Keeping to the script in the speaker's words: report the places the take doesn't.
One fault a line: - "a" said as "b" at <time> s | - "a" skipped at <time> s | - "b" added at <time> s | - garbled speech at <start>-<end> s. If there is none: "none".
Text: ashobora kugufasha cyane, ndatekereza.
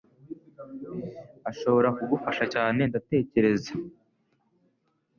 none